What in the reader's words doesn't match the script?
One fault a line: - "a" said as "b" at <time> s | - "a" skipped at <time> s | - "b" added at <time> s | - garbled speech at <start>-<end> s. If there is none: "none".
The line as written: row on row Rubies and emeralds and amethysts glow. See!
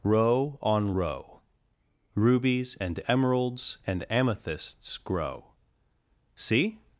- "glow" said as "grow" at 5.0 s